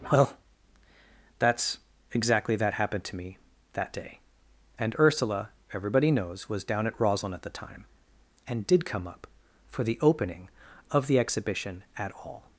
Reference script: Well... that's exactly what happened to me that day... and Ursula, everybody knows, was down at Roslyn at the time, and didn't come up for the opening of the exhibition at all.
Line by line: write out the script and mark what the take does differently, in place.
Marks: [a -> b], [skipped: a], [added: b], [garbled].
Well... that's exactly [what -> that] happened to me that day... and Ursula, everybody knows, was down at Roslyn at the time, and [didn't -> did] come up for the opening of the exhibition at all.